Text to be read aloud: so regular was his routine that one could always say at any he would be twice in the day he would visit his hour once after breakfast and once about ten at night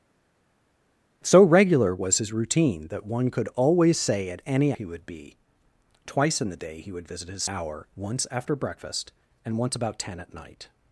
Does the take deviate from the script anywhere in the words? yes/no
no